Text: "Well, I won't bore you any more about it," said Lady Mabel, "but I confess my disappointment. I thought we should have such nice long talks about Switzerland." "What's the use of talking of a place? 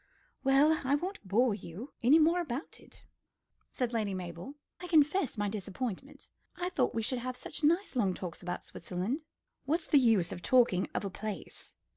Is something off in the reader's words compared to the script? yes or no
yes